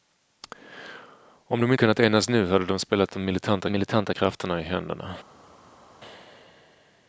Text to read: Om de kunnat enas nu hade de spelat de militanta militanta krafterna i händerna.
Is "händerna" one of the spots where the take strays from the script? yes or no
no